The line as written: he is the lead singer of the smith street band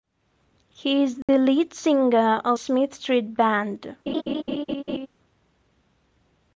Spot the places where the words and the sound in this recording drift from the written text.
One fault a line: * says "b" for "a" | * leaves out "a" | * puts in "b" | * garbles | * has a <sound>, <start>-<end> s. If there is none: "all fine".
* has a dropout, 1.2-1.3 s
* leaves out "the"
* has a laugh, 4.1-5.1 s